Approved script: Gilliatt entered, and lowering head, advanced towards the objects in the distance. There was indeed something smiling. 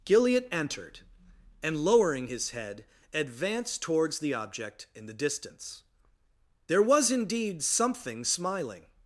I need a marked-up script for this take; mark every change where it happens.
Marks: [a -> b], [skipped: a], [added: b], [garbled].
Gilliatt entered, and lowering [added: his] head, advanced towards the [objects -> object] in the distance. There was indeed something smiling.